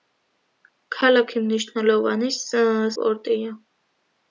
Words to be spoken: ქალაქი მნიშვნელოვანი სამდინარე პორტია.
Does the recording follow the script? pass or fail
fail